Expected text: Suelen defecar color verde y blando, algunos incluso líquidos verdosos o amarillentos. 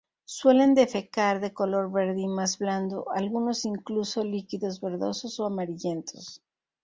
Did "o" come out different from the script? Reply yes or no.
no